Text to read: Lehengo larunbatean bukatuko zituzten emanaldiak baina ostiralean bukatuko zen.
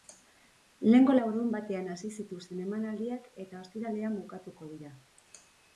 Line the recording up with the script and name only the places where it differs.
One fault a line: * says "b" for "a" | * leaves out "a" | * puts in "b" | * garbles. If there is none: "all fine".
* says "hasi" for "bukatuko"
* says "eta" for "baina"
* says "dira" for "zen"